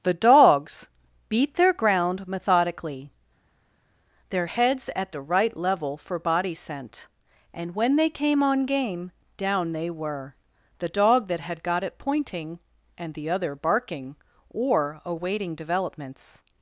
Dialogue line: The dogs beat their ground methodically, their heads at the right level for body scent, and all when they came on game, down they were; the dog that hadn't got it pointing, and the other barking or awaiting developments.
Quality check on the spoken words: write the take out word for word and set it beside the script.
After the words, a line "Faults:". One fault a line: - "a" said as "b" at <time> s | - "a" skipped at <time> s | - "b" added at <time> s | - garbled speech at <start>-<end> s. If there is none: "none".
The dogs beat their ground methodically, their heads at the right level for body scent, and when they came on game, down they were; the dog that had got it pointing, and the other barking or awaiting developments.
Faults:
- "all" skipped at 7.7 s
- "hadn't" said as "had" at 11.4 s